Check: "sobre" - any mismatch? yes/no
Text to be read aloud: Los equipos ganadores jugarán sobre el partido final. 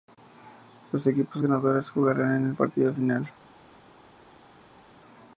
yes